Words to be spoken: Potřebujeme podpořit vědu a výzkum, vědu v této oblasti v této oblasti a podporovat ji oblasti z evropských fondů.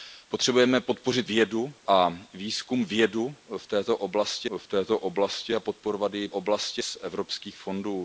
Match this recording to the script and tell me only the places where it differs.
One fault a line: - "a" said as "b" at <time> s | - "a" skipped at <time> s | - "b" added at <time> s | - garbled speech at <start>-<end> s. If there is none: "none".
none